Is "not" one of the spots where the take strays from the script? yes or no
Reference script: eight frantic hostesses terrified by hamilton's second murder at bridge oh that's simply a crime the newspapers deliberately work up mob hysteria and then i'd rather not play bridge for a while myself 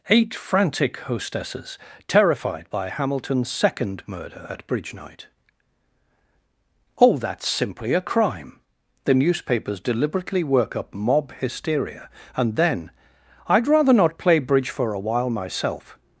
no